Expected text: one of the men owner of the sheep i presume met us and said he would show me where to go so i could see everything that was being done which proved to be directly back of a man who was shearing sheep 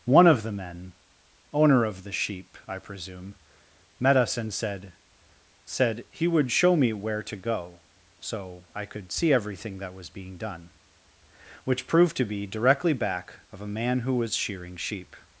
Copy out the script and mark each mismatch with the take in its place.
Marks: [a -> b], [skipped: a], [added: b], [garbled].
one of the men owner of the sheep i presume met us and said [added: said] he would show me where to go so i could see everything that was being done which proved to be directly back of a man who was shearing sheep